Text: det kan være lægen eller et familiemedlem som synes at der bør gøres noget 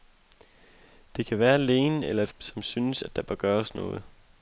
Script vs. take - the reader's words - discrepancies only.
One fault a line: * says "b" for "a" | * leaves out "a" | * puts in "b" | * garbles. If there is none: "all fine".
* leaves out "familiemedlem"